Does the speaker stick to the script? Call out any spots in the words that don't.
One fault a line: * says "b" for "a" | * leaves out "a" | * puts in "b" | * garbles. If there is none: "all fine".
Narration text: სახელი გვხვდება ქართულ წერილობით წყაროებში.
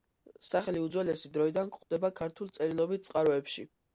* puts in "უძველესი დროიდან"